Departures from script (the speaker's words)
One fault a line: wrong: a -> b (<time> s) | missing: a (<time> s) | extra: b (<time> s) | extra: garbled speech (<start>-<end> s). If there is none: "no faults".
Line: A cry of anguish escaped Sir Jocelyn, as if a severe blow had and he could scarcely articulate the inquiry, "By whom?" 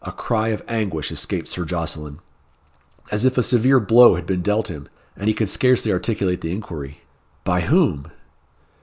extra: been dealt him (4.2 s)